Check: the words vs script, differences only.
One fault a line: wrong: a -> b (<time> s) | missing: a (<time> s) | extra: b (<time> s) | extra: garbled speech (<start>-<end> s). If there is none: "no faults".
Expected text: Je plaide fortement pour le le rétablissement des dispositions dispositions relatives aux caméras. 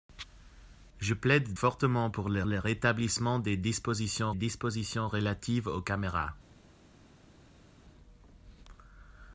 no faults